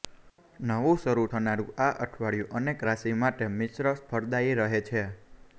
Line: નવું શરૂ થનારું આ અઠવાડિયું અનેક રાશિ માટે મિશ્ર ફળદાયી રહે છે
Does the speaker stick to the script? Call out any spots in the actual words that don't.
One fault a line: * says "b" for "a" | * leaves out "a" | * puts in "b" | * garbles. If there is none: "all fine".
all fine